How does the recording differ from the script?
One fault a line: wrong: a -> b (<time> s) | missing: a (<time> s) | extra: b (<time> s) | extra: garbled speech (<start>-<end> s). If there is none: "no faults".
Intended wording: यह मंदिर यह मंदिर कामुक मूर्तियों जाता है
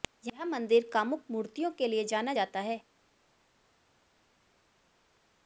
wrong: यह मंदिर कामुक मूर्तियों -> कामुक मूर्तियों के लिए जाना (0.9 s)